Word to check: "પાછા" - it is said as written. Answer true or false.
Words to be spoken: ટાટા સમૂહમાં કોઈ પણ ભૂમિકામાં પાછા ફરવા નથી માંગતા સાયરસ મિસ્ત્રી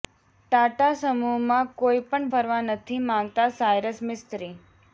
false